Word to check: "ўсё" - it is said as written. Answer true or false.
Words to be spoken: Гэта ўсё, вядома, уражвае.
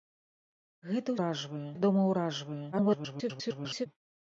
false